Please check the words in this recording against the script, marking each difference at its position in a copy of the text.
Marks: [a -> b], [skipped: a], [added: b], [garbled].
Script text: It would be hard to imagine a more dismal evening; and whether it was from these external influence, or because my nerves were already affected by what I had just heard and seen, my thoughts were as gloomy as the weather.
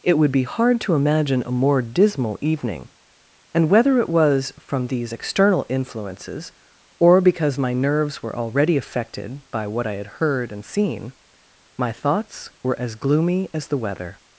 It would be hard to imagine a more dismal evening; and whether it was from these external [influence, -> influences] or because my nerves were already affected by what I had [skipped: just] heard and seen, my thoughts were as gloomy as the weather.